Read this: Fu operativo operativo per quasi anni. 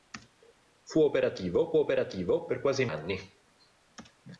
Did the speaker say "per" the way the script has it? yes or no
yes